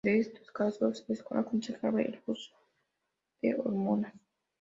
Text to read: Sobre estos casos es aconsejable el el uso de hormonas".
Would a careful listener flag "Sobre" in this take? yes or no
yes